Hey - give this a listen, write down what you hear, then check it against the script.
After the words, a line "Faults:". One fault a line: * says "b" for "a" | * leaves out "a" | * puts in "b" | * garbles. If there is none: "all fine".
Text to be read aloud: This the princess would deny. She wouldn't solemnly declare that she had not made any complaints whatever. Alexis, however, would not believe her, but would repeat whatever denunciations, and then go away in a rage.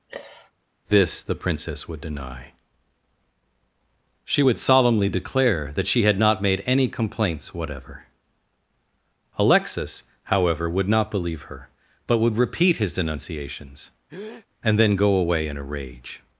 This the princess would deny. She would solemnly declare that she had not made any complaints whatever. Alexis, however, would not believe her, but would repeat his denunciations, and then go away in a rage.
Faults:
* says "would" for "wouldn't"
* says "his" for "whatever"